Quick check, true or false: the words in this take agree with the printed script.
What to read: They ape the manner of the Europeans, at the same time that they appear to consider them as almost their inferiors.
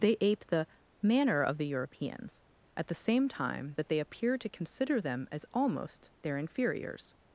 true